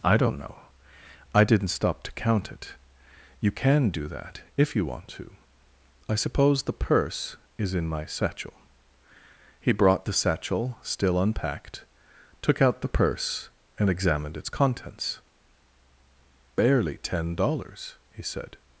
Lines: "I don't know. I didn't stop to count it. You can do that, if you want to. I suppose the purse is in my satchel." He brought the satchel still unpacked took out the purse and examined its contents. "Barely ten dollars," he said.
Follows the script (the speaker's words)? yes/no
yes